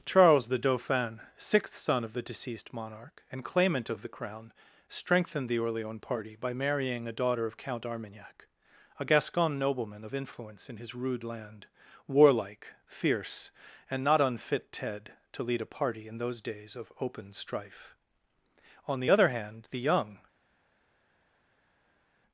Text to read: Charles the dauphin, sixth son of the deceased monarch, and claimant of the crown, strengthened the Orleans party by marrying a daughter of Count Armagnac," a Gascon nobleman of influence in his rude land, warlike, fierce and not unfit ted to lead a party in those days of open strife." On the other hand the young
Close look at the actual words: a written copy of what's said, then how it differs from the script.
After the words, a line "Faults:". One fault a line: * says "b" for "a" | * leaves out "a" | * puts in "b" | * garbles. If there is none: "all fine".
Charles the dauphin, sixth son of the deceased monarch, and claimant of the crown, strengthened the Orleans party by marrying a daughter of Count Armagnac," a Gascon nobleman of influence in his rude land, warlike, fierce and not unfit ted to lead a party in those days of open strife." On the other hand the young
Faults:
all fine